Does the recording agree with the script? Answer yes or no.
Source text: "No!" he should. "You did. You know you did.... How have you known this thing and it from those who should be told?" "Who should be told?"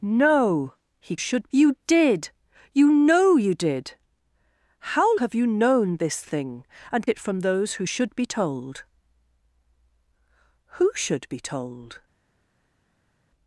yes